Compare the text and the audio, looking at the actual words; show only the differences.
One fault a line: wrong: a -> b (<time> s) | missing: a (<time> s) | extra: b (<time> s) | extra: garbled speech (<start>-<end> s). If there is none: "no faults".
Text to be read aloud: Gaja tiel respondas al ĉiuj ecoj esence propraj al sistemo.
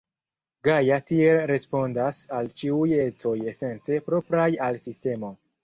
no faults